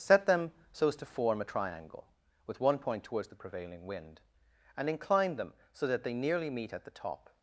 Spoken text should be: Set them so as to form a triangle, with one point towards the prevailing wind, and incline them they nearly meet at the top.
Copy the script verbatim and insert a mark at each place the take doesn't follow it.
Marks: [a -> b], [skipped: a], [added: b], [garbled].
Set them so as to form a triangle, with one point towards the prevailing wind, and incline them [added: so that] they nearly meet at the top.